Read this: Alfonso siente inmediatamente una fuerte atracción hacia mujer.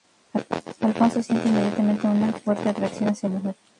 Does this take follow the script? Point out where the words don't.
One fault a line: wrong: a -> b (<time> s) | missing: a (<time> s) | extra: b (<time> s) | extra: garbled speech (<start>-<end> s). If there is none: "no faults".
no faults